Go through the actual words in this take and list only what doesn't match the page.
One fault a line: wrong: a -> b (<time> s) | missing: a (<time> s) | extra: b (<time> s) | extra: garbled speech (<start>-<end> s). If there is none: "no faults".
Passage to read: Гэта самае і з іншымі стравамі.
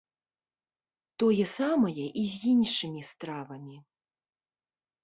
wrong: Гэта -> Тое (1.2 s)